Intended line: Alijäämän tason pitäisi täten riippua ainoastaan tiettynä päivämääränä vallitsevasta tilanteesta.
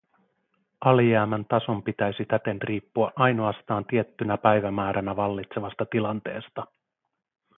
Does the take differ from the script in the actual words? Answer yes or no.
no